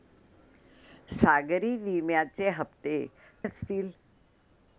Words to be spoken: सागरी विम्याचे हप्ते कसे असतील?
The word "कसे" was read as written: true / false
false